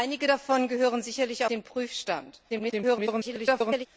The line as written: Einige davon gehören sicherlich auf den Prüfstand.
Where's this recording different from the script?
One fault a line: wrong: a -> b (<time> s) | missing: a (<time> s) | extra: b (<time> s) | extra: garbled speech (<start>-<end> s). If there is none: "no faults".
missing: auf (1.4 s)
extra: garbled speech (2.5-3.9 s)